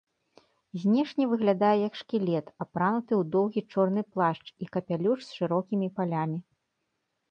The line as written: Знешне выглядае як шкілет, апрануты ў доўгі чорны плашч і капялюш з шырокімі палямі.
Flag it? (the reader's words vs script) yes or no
no